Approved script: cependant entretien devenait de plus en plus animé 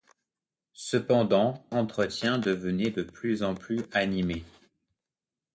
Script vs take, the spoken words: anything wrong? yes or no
no